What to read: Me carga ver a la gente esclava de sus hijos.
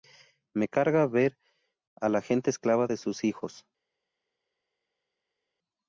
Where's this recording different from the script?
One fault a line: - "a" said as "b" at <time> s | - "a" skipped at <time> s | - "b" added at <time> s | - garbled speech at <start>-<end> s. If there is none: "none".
none